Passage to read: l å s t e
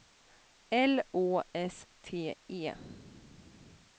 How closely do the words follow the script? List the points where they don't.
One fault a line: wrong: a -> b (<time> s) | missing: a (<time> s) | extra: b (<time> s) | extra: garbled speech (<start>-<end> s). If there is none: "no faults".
no faults